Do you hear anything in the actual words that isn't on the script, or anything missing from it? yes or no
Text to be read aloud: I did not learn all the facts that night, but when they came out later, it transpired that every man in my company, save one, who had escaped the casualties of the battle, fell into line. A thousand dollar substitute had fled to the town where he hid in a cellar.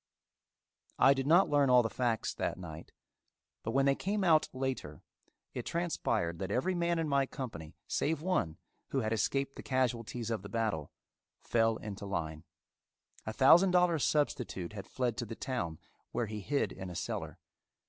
no